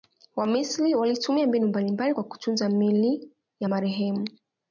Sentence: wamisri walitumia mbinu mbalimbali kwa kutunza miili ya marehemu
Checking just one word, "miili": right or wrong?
right